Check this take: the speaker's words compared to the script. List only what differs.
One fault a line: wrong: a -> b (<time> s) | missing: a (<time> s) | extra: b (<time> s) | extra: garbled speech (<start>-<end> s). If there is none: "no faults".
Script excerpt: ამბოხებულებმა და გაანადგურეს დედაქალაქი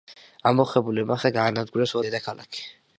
no faults